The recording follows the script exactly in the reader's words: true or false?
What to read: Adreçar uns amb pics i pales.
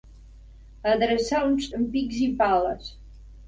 true